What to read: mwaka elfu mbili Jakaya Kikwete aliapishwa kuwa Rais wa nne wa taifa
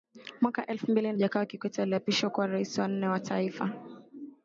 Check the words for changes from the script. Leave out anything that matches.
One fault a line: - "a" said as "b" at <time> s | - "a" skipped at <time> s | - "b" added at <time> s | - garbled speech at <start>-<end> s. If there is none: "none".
none